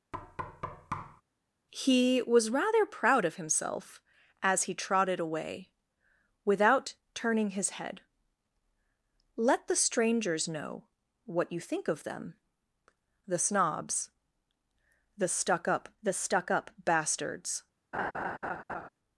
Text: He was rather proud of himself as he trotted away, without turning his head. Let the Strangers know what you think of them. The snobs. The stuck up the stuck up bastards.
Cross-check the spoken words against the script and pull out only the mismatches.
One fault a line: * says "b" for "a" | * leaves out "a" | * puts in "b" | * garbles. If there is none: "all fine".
all fine